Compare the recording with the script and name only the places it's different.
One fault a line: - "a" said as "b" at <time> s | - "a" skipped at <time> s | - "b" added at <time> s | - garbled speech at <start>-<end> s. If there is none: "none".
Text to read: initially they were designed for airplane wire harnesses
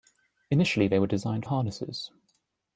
- "for airplane wire" skipped at 1.4 s